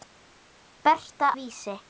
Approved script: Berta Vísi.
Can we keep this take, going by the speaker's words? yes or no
yes